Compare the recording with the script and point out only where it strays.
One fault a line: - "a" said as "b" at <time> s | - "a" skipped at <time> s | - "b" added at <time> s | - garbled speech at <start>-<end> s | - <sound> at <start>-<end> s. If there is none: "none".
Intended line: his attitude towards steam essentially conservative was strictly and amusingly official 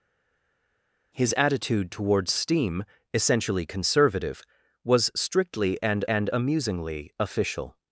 - "and" added at 6.1 s